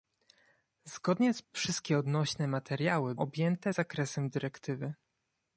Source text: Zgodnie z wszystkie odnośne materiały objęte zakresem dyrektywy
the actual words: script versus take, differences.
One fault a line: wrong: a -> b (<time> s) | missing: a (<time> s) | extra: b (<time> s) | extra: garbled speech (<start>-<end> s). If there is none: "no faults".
no faults